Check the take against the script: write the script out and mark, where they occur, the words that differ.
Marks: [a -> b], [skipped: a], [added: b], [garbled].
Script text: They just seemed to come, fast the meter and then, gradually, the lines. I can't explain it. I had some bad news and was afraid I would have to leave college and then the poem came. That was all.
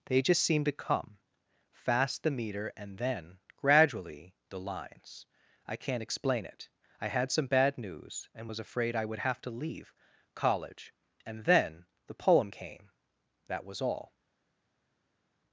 They just seemed to come, fast the meter and then, gradually, the lines. I can't explain it. I had some bad news and was afraid I would have to leave college and then the poem came. That was all.